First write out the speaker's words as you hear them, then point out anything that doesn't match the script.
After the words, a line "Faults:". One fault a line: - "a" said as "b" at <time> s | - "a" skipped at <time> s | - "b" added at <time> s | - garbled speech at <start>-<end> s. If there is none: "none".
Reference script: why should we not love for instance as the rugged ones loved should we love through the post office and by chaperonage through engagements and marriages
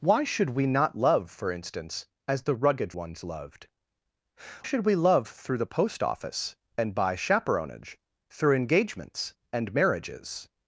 why should we not love for instance as the rugged ones loved should we love through the post office and by chaperonage through engagements and marriages
Faults:
none